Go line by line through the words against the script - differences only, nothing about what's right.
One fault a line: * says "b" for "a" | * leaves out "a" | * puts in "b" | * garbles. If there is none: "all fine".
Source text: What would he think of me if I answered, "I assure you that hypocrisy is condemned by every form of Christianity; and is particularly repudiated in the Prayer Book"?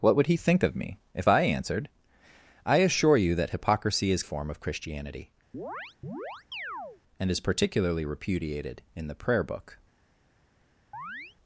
* leaves out "condemned by every"